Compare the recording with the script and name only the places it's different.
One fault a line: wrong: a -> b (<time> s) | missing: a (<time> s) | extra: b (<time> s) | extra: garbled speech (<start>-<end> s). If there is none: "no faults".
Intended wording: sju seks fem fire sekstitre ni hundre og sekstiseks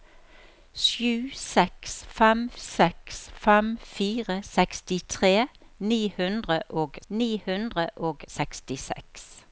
extra: seks fem (2.6 s)
extra: ni hundre og (7.1 s)